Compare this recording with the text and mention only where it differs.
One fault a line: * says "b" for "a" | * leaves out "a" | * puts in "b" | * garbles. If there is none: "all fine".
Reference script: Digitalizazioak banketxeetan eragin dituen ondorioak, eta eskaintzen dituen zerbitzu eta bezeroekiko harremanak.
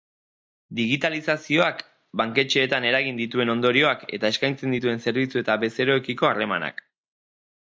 all fine